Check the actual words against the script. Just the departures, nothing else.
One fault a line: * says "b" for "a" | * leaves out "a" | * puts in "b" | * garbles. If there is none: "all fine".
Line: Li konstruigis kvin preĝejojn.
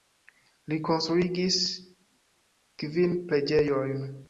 all fine